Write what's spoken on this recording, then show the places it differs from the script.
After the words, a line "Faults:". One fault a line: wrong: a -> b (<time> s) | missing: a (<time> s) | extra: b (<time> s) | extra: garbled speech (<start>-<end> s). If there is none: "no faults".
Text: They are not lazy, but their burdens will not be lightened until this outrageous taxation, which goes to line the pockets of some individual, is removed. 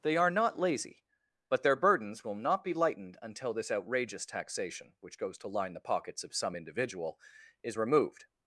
They are not lazy, but their burdens will not be lightened until this outrageous taxation, which goes to line the pockets of some individual, is removed.
Faults:
no faults